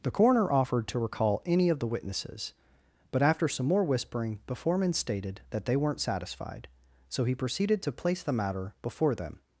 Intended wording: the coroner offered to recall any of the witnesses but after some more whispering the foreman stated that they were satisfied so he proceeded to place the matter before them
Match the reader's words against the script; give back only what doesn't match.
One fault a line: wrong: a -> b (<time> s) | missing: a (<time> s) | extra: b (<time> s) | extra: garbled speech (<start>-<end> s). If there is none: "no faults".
wrong: were -> weren't (5.8 s)